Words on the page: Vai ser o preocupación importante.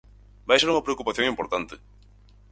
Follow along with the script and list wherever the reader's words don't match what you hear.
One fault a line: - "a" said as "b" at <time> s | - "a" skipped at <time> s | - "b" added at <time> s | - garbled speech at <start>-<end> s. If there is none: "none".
- "o" said as "unha" at 0.7 s